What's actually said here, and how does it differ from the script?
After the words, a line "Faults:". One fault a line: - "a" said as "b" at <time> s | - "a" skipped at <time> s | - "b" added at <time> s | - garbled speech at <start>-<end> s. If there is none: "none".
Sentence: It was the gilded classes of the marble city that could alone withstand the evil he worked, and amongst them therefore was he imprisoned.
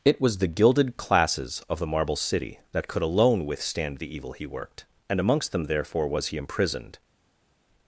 It was the gilded classes of the marble city that could alone withstand the evil he worked, and amongst them therefore was he imprisoned.
Faults:
none